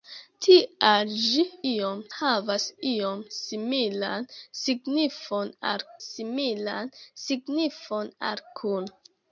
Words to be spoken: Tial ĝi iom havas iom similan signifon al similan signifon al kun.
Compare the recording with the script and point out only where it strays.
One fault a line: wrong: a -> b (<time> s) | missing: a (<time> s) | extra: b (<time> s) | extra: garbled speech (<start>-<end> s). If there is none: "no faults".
no faults